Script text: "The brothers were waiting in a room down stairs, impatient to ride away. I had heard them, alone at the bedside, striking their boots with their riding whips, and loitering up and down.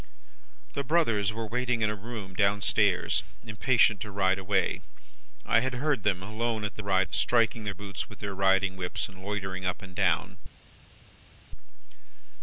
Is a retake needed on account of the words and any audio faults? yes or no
yes